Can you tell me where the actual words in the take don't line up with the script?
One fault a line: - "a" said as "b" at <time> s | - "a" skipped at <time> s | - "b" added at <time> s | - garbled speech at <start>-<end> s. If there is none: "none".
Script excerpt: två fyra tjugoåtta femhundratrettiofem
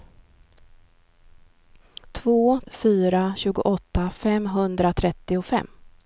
none